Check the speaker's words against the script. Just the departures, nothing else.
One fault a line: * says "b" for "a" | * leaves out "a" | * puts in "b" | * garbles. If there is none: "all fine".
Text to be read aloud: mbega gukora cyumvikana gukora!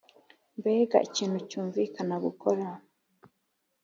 * says "ikintu" for "gukora"